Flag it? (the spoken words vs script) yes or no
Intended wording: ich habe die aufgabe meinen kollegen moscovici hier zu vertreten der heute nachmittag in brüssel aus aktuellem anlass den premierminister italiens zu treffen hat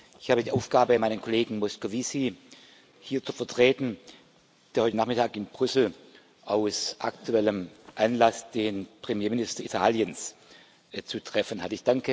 no